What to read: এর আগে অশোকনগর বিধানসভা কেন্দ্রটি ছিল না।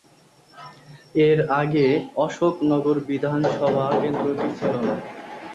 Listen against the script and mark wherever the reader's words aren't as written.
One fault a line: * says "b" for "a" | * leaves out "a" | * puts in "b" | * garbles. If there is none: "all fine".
all fine